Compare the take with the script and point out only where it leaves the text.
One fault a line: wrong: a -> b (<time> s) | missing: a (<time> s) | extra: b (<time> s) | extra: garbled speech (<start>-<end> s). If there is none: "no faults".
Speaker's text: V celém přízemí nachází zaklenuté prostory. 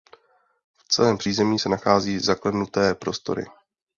extra: se (1.6 s)